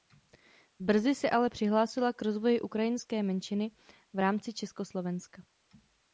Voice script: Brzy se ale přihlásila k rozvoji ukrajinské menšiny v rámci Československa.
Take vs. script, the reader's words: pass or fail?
pass